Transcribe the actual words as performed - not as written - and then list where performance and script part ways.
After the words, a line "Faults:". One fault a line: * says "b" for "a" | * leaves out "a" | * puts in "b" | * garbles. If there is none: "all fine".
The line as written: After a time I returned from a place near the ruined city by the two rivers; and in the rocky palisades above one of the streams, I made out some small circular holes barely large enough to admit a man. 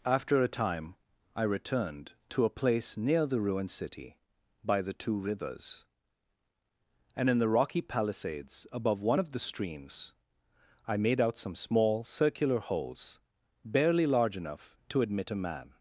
After a time I returned to a place near the ruined city by the two rivers; and in the rocky palisades above one of the streams, I made out some small circular holes barely large enough to admit a man.
Faults:
* says "to" for "from"